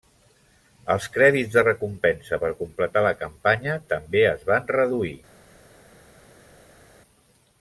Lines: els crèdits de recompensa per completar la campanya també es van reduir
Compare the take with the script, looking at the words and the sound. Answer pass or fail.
pass